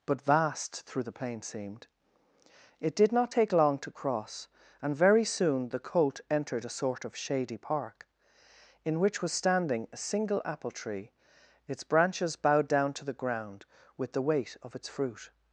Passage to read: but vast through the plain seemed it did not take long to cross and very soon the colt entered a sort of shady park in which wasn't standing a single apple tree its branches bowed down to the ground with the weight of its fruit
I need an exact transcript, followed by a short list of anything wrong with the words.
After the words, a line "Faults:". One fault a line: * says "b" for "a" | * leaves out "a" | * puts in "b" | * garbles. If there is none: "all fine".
but vast through the plain seemed it did not take long to cross and very soon the colt entered a sort of shady park in which was standing a single apple tree its branches bowed down to the ground with the weight of its fruit
Faults:
* says "was" for "wasn't"